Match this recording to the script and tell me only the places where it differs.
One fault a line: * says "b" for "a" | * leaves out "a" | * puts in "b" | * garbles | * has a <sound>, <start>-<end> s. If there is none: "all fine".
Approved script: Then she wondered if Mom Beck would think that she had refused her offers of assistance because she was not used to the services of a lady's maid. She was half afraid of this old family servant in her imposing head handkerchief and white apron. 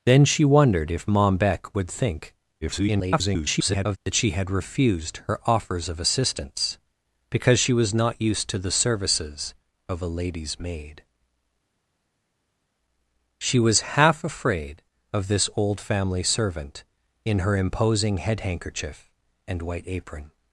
* garbles